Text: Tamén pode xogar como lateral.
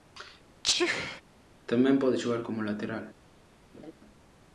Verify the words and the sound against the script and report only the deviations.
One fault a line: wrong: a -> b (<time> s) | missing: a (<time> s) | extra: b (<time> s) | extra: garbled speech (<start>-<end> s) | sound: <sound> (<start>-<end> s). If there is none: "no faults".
sound: sneeze (0.6-1.2 s)
sound: laugh (3.7-3.9 s)